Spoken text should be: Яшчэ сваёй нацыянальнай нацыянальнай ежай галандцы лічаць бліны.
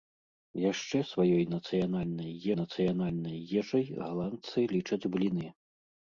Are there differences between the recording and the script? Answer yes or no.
no